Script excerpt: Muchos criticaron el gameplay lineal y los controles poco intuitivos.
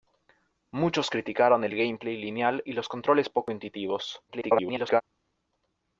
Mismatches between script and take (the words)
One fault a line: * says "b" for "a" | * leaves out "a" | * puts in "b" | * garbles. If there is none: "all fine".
* garbles